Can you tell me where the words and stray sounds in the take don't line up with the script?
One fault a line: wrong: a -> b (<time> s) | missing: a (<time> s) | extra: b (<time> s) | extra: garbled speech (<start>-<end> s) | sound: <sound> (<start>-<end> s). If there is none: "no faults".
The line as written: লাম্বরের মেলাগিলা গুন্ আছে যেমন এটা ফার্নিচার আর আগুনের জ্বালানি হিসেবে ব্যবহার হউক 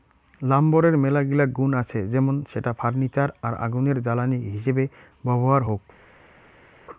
wrong: এটা -> সেটা (2.5 s)